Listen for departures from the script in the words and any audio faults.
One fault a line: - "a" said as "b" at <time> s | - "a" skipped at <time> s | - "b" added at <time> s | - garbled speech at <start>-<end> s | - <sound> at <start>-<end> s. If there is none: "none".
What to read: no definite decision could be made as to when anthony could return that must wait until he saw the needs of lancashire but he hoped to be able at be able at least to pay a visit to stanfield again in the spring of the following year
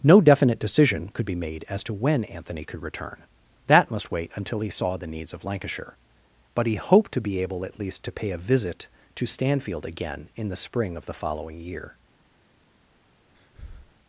- "be able at" skipped at 7.8 s
- breath at 13.3-13.9 s